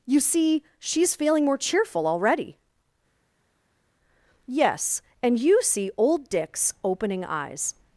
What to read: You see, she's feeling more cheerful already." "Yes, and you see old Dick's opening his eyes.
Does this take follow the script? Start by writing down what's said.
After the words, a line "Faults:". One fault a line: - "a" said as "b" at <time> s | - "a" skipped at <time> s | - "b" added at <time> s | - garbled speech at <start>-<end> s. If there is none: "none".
You see, she's feeling more cheerful already." "Yes, and you see old Dick's opening eyes.
Faults:
- "his" skipped at 7.2 s